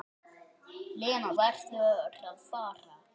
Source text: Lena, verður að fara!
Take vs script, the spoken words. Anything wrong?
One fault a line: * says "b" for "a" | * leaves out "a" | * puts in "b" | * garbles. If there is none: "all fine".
all fine